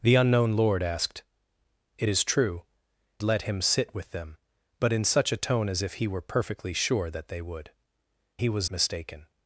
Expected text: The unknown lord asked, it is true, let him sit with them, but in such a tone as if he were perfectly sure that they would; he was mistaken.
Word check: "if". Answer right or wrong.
right